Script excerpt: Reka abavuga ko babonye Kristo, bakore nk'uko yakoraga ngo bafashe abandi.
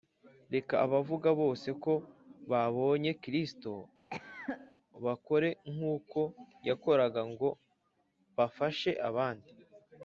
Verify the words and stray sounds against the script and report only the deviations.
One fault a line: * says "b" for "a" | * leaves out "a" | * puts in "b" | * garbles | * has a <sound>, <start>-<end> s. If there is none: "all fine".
* puts in "bose"
* has a cough, 4.1-4.7 s